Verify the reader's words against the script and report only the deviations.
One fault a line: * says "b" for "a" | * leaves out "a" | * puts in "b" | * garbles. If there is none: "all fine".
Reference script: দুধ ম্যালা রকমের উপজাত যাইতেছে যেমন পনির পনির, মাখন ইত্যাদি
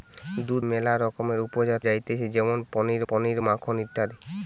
all fine